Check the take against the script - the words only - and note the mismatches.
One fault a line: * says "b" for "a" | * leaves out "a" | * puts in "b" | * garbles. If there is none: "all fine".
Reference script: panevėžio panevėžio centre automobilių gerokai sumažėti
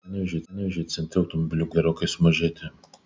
all fine